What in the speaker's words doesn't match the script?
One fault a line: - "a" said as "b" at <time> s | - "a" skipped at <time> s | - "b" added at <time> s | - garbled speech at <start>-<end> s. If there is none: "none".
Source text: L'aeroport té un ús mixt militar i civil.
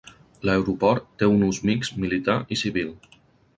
none